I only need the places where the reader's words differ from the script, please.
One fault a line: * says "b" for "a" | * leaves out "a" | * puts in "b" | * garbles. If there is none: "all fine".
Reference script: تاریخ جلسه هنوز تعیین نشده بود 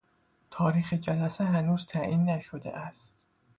* says "است" for "بود"